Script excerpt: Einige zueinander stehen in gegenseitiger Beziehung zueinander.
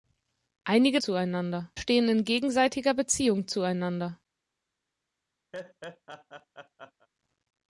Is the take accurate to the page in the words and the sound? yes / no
no